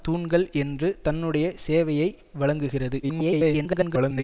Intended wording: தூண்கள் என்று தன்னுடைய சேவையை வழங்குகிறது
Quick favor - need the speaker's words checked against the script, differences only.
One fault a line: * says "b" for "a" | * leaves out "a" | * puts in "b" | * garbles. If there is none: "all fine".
* garbles